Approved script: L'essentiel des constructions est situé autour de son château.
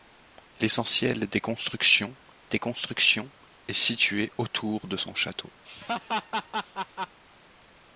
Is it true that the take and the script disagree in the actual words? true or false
true